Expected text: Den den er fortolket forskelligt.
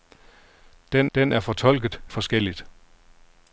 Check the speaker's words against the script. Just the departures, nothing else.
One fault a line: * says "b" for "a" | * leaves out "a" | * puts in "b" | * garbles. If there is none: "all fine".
all fine